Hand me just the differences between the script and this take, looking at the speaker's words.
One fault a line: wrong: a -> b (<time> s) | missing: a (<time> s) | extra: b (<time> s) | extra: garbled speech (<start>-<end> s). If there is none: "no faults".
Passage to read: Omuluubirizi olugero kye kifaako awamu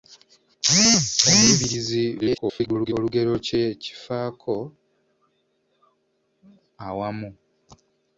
extra: garbled speech (2.2-2.9 s)